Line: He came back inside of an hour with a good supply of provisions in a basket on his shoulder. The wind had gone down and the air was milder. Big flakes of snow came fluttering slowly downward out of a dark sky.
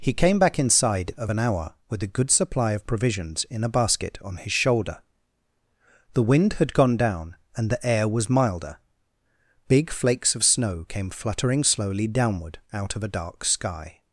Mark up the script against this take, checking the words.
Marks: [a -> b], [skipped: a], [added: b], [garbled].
He came back inside of an hour with a good supply of provisions in a basket on his shoulder. The wind had gone down and the air was milder. Big flakes of snow came fluttering slowly downward out of a dark sky.